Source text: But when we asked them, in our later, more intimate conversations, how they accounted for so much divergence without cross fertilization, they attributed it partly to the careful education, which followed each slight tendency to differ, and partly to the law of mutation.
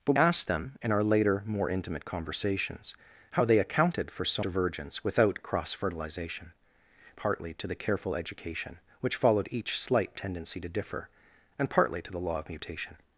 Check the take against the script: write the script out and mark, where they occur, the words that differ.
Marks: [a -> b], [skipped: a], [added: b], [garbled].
But [skipped: when we] asked them, in our later, more intimate conversations, how they accounted for so [skipped: much] divergence without cross fertilization, [skipped: they attributed it] partly to the careful education, which followed each slight tendency to differ, and partly to the law of mutation.